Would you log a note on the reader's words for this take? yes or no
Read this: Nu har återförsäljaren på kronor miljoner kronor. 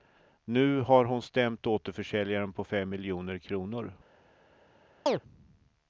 yes